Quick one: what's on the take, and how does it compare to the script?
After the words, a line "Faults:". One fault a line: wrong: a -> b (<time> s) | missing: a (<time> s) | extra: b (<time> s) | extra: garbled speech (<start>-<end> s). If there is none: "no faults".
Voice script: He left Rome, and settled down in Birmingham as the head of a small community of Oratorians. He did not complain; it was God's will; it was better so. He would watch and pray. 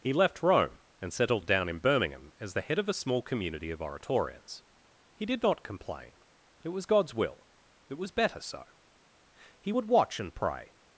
He left Rome, and settled down in Birmingham as the head of a small community of Oratorians. He did not complain; it was God's will; it was better so. He would watch and pray.
Faults:
no faults